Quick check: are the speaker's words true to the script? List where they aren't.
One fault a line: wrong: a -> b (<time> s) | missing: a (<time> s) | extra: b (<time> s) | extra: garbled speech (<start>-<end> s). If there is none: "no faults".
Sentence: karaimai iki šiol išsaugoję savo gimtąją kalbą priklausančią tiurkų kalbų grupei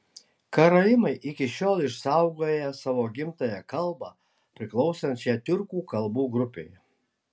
no faults